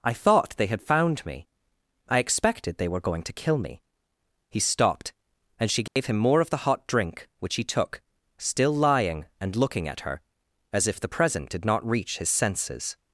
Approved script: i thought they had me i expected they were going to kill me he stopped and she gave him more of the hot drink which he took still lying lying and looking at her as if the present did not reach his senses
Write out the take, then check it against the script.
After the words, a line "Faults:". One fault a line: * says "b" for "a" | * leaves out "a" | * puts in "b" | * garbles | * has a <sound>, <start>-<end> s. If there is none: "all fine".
i thought they had found me i expected they were going to kill me he stopped and she gave him more of the hot drink which he took still lying and looking at her as if the present did not reach his senses
Faults:
* puts in "found"
* has a dropout, 5.9-6.0 s
* leaves out "lying"